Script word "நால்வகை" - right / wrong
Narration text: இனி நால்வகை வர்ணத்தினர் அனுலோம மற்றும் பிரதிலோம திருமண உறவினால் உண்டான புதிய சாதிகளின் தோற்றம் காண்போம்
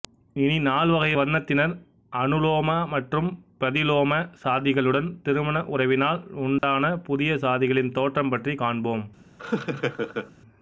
right